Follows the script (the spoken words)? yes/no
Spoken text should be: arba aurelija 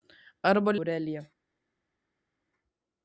yes